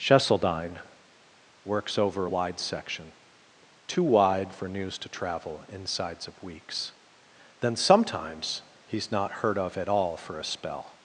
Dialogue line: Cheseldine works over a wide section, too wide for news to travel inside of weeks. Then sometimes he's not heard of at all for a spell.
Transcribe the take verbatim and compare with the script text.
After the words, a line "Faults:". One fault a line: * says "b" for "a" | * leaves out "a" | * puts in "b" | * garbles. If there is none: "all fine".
Cheseldine works over a wide section, too wide for news to travel insides of weeks. Then sometimes he's not heard of at all for a spell.
Faults:
* says "insides" for "inside"